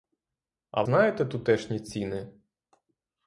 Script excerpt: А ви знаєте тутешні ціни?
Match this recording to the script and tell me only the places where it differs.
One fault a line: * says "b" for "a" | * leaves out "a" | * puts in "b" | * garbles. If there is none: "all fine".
* leaves out "ви"